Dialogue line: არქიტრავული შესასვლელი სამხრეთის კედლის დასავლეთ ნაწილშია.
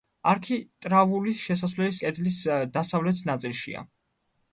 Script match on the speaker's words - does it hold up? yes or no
no